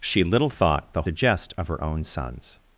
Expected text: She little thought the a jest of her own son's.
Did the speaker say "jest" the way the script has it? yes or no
yes